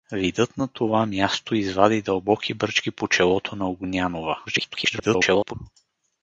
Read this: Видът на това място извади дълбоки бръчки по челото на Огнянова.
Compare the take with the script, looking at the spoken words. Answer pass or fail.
fail